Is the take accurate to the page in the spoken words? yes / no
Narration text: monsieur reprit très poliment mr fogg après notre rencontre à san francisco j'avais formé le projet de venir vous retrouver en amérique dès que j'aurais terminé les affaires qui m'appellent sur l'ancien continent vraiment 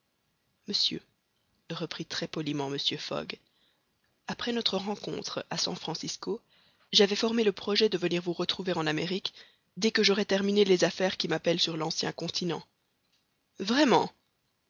yes